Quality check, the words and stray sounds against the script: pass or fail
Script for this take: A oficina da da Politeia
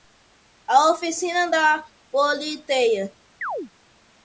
fail